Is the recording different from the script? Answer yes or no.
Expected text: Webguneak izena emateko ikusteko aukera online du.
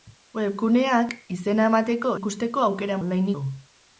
no